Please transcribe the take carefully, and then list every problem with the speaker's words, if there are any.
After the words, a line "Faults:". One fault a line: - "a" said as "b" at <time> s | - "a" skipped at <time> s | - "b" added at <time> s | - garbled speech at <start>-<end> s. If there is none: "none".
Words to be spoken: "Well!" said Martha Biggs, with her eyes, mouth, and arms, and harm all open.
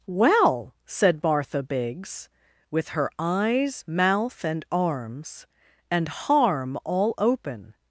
"Well!" said Martha Biggs, with her eyes, mouth, and arms, and harm all open.
Faults:
none